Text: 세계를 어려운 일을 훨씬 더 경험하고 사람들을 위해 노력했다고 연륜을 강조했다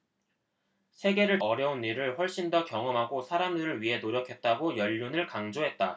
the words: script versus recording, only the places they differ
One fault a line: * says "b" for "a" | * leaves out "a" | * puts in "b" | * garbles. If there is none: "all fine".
all fine